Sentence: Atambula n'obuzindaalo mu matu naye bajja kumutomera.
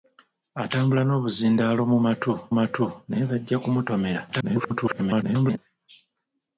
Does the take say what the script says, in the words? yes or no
no